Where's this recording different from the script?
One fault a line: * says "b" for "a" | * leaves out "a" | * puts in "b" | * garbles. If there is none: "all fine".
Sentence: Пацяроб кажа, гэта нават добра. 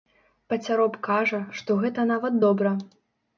* puts in "што"